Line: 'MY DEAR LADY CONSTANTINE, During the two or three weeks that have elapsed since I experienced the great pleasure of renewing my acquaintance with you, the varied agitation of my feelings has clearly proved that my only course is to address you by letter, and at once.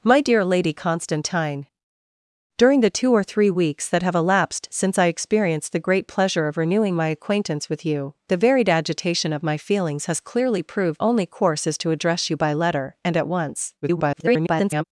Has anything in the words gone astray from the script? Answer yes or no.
yes